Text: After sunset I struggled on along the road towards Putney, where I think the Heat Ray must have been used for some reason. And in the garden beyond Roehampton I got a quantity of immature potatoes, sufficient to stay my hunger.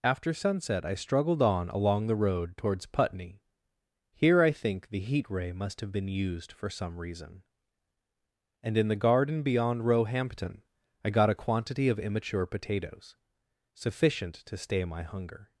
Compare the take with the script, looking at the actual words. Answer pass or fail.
fail